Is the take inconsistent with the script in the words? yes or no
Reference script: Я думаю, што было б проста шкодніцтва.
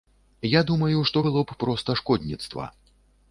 no